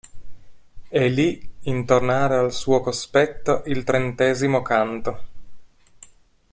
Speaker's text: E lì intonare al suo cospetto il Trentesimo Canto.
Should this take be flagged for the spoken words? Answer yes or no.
no